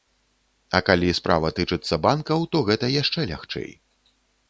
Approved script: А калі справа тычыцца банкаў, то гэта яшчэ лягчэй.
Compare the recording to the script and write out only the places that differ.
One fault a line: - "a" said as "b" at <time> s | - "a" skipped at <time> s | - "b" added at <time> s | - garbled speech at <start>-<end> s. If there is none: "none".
none